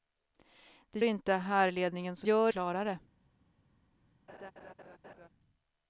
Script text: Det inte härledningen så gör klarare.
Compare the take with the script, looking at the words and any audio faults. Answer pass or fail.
fail